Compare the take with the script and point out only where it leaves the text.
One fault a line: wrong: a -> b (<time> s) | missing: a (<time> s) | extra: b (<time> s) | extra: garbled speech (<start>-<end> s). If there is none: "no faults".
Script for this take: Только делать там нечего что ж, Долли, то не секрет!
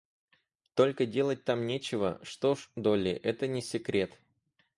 wrong: то -> это (3.1 s)